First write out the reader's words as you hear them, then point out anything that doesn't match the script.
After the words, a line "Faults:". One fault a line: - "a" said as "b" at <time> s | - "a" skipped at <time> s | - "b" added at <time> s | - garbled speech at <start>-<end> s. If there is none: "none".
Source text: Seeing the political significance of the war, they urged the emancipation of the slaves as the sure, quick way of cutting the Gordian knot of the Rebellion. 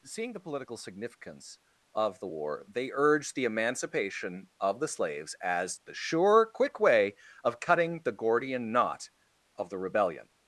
Seeing the political significance of the war, they urged the emancipation of the slaves as the sure, quick way of cutting the Gordian knot of the Rebellion.
Faults:
none